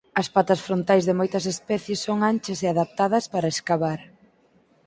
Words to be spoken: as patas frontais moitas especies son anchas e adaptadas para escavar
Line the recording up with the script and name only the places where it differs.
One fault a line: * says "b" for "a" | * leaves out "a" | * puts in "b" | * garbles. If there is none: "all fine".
* puts in "de"